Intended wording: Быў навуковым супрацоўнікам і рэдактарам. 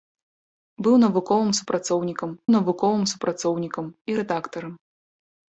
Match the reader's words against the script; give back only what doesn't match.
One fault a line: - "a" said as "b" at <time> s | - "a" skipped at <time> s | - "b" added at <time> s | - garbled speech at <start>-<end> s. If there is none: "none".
- "навуковым супрацоўнікам" added at 2.5 s